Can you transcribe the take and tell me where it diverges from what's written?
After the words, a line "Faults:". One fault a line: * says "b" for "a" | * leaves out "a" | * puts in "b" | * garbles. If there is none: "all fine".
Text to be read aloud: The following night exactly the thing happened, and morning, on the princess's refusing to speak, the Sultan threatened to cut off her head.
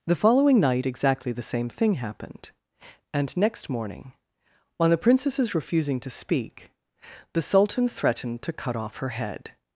The following night exactly the same thing happened, and next morning, on the princess's refusing to speak, the Sultan threatened to cut off her head.
Faults:
* puts in "same"
* puts in "next"